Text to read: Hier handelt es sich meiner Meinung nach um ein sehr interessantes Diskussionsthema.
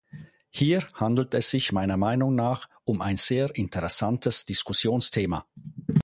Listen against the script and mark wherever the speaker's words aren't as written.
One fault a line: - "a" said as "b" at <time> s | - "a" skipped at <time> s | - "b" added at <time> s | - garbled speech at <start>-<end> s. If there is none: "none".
none